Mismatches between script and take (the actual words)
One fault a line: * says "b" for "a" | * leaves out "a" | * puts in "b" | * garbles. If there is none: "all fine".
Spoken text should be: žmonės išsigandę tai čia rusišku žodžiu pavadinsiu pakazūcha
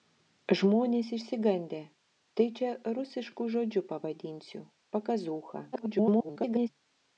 * garbles